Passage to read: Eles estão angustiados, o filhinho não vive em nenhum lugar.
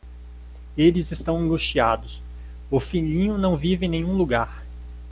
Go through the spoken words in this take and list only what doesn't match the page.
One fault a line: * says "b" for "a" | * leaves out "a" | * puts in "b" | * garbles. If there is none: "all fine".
all fine